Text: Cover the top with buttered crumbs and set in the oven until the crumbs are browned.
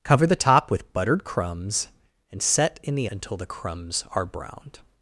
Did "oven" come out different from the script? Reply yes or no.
yes